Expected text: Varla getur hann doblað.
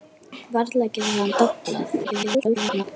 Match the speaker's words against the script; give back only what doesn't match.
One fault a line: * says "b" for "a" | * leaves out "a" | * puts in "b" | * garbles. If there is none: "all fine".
* garbles